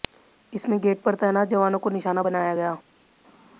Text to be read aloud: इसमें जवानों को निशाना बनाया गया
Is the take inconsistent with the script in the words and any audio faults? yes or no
yes